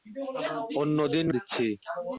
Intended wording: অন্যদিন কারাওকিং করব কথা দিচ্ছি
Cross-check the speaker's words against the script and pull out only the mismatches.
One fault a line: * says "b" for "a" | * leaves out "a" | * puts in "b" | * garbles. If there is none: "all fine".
* leaves out "কারাওকিং করব কথা"